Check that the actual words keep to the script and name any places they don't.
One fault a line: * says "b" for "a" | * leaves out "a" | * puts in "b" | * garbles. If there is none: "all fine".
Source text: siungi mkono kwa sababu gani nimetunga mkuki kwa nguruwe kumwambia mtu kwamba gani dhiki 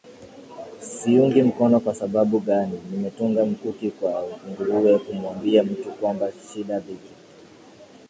* says "shida" for "gani"